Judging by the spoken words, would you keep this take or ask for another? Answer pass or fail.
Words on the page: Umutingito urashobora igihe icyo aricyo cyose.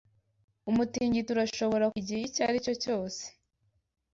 pass